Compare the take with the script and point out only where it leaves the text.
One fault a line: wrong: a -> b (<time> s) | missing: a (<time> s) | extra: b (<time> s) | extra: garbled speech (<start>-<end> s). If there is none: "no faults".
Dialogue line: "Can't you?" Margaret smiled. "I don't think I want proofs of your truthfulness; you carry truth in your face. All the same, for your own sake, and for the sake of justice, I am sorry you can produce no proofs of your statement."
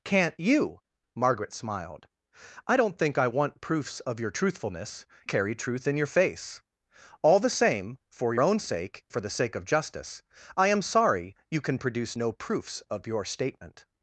missing: you (5.0 s)
missing: your (8.3 s)
missing: and (9.0 s)